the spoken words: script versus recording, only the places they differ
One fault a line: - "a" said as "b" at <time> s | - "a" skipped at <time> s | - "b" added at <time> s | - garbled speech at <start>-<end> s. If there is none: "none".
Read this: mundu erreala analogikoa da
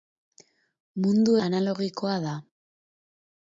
- "erreala" skipped at 1.4 s